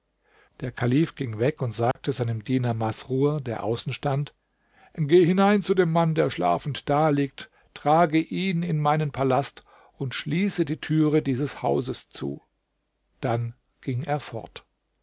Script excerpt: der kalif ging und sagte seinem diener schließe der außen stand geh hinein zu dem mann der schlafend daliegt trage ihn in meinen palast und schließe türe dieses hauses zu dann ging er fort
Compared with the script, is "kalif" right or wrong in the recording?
right